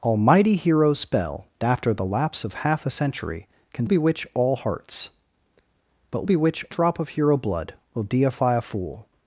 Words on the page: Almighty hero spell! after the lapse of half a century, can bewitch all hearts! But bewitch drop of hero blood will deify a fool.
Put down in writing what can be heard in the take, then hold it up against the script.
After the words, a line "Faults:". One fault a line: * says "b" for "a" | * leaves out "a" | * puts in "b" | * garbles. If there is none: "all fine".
Almighty hero spell! after the lapse of half a century, can bewitch all hearts! But bewitch drop of hero blood will deify a fool.
Faults:
all fine